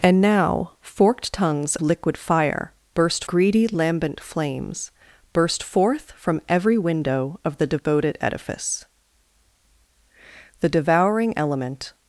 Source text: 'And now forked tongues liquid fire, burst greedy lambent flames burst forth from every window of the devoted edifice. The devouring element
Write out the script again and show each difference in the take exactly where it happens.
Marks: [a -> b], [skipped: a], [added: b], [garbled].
'And now forked tongues liquid fire, burst greedy lambent flames burst forth from every window of the devoted edifice. The devouring element